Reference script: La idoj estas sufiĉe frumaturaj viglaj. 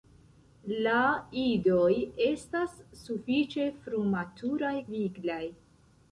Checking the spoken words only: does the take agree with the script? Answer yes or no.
yes